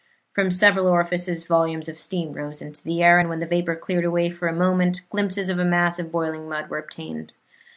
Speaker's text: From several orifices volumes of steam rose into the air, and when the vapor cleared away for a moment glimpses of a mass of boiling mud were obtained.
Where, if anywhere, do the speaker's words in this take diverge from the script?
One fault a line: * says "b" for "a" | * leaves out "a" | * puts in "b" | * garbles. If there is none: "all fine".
all fine